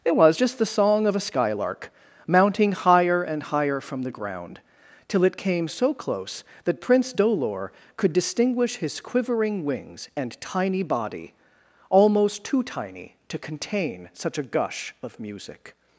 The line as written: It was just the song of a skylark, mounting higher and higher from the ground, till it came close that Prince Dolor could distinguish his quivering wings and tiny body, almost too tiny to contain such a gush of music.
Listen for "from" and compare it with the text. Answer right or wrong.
right